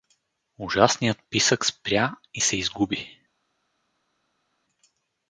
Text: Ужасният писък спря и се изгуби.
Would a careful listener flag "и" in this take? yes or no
no